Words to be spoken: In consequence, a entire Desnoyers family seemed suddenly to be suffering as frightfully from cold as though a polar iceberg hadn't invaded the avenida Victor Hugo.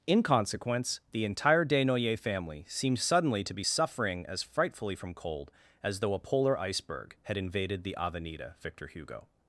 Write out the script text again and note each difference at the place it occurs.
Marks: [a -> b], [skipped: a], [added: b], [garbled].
In consequence, [a -> the] entire Desnoyers family seemed suddenly to be suffering as frightfully from cold as though a polar iceberg [hadn't -> had] invaded the avenida Victor Hugo.